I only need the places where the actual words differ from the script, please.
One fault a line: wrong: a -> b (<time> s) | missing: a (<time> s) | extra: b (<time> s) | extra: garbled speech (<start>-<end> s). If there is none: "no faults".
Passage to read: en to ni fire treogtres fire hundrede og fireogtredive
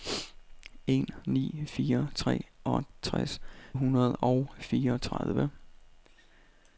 missing: to (1.1 s)
missing: fire (3.4 s)